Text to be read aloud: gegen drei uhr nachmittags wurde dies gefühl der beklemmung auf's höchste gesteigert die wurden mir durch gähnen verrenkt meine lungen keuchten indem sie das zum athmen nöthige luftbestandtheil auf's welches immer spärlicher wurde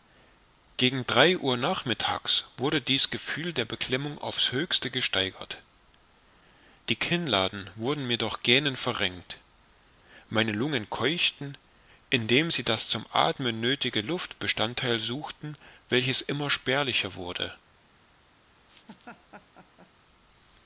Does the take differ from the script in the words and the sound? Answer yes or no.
yes